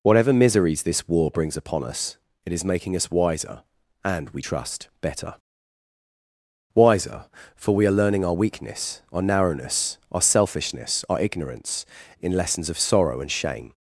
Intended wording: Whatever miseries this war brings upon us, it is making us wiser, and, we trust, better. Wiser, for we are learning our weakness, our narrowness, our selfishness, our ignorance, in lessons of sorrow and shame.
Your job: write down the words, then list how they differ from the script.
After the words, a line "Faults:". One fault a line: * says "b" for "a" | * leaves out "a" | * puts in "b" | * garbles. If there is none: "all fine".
Whatever miseries this war brings upon us, it is making us wiser, and, we trust, better. Wiser, for we are learning our weakness, our narrowness, our selfishness, our ignorance, in lessons of sorrow and shame.
Faults:
all fine